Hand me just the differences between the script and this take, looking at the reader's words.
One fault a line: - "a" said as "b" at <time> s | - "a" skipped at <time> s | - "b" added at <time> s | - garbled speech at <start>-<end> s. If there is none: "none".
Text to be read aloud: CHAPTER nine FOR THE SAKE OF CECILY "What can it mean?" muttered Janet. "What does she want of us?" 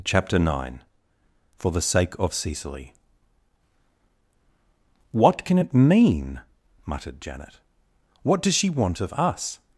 none